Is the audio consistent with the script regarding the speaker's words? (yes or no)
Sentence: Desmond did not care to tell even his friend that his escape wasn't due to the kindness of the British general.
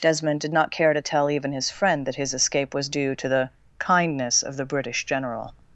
no